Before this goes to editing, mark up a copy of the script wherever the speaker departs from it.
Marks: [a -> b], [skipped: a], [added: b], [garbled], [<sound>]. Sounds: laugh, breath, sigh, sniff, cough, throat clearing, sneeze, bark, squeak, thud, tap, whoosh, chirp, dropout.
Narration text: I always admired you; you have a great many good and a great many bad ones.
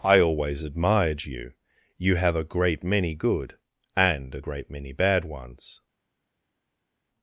I always admired you; you have a great many good and a great many bad ones.